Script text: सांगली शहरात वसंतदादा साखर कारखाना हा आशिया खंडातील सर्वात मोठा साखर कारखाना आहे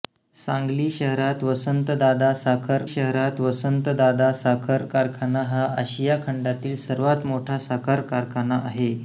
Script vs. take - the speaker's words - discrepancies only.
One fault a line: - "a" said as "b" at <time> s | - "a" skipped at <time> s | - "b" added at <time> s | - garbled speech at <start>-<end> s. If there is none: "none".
- "शहरात वसंतदादा साखर" added at 2.8 s